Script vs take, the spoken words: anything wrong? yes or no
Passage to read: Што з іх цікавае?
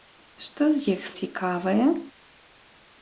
no